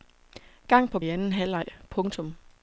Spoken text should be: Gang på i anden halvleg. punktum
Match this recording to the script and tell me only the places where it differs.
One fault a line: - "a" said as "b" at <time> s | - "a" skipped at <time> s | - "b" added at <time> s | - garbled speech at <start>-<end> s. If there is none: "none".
none